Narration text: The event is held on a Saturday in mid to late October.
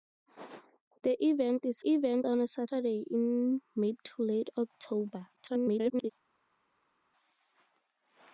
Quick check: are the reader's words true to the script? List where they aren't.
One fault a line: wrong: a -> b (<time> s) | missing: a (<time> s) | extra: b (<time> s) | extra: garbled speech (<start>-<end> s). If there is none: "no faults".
wrong: held -> event (1.9 s)
extra: garbled speech (5.4-6.1 s)